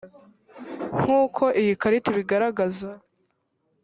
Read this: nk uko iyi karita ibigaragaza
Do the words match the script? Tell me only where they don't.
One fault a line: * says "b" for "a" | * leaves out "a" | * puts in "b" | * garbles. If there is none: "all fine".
all fine